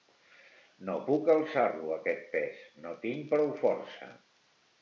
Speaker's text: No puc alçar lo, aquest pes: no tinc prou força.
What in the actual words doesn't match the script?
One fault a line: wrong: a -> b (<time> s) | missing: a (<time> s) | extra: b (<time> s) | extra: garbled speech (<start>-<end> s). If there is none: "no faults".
no faults